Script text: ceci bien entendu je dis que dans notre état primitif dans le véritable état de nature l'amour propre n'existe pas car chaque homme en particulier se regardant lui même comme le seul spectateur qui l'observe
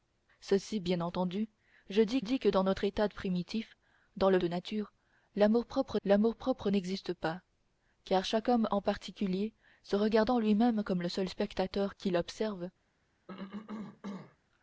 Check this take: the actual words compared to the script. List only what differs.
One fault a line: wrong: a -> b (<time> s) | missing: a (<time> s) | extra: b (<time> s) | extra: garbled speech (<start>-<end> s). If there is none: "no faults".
extra: dis (2.2 s)
wrong: véritable état de nature -> de nature l'amour propre (4.4 s)